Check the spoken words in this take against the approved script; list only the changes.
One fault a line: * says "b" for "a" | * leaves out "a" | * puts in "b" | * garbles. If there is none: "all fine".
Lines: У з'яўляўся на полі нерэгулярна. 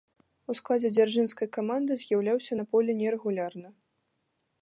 * puts in "складзе дзяржынскай каманды"